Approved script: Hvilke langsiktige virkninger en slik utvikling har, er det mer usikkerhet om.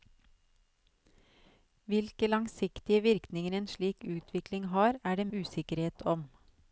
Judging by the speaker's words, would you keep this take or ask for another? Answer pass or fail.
fail